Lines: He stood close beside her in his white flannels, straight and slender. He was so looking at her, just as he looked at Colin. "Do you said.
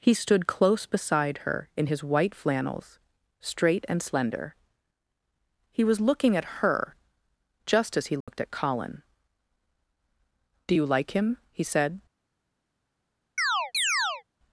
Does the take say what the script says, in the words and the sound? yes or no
no